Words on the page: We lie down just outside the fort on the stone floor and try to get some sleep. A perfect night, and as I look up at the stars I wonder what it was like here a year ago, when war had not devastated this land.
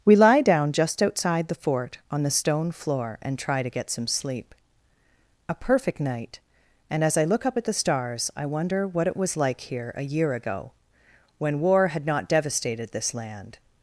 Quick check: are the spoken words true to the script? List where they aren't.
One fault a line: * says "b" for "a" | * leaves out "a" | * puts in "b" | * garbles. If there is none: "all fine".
all fine